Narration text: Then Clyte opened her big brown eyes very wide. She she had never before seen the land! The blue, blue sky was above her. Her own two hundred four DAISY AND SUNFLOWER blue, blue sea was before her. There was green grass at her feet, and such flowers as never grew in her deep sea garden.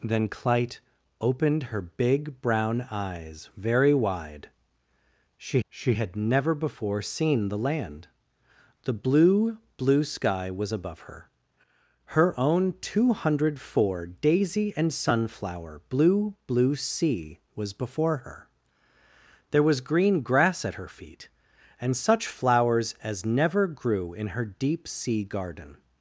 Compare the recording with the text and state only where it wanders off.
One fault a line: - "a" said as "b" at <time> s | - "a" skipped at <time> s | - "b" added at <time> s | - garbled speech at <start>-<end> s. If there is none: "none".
none